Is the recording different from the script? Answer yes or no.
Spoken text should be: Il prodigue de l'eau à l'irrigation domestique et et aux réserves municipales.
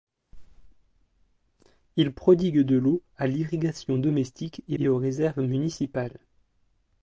no